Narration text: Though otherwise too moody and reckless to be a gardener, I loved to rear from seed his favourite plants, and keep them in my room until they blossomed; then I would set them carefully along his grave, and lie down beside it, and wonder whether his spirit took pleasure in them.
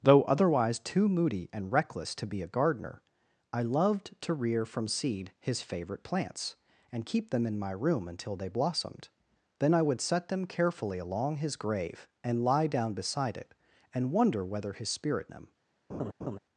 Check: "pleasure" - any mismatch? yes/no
yes